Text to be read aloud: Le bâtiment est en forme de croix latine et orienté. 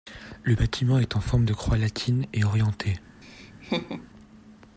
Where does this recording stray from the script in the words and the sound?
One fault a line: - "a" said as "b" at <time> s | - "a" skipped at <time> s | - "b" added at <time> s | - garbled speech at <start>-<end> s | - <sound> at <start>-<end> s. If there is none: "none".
- laugh at 3.2-4.1 s